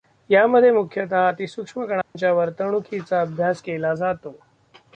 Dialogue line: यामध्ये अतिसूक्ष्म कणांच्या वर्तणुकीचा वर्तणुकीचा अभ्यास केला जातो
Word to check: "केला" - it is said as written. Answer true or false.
true